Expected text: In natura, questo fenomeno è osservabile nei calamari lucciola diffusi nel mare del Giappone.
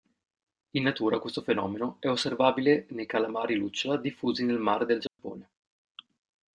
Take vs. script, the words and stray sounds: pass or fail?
fail